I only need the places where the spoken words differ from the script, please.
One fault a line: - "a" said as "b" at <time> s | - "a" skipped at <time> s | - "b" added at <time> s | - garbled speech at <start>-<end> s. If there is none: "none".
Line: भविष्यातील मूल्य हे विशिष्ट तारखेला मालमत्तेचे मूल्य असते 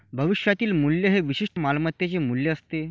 - "तारखेला" skipped at 1.6 s